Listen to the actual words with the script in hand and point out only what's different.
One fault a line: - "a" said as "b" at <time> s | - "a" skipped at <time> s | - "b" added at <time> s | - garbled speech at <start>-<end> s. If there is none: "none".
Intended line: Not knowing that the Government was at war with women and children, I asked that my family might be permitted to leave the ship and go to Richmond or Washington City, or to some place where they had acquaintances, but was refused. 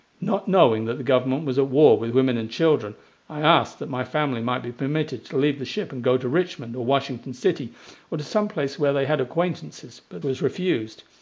none